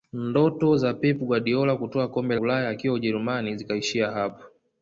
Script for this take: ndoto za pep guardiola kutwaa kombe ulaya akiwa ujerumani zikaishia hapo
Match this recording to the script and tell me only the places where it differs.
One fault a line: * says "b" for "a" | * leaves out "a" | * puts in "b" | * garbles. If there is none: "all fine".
all fine